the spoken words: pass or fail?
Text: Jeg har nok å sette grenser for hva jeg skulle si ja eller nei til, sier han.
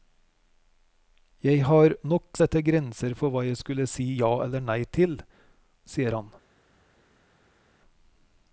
pass